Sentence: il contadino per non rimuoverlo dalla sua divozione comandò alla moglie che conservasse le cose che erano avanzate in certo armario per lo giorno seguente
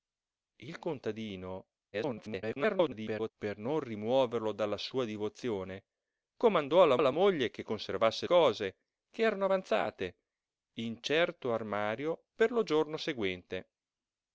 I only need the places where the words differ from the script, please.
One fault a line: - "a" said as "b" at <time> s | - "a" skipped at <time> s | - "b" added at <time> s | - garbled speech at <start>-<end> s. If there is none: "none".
- garbled speech at 1.9-3.3 s
- "alla" added at 7.0 s
- "le" skipped at 8.3 s